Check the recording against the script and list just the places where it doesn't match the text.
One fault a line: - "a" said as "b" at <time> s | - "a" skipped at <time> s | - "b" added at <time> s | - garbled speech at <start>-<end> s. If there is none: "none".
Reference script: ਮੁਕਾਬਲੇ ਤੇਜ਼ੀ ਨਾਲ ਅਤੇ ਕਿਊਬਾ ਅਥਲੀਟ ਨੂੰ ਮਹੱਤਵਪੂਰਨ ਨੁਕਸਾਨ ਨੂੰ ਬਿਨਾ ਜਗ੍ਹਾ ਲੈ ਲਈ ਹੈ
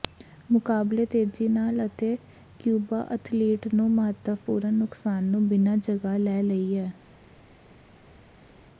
none